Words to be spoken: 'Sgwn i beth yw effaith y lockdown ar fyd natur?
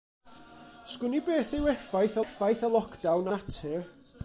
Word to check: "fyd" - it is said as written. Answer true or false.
false